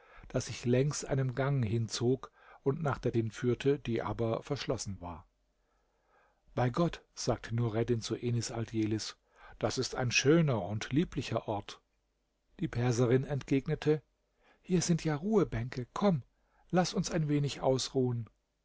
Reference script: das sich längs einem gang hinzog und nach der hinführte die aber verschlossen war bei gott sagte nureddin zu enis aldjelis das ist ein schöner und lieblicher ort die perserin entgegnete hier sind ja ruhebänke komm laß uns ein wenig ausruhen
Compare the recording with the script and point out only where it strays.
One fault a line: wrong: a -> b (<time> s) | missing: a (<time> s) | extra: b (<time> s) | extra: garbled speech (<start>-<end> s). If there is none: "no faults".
no faults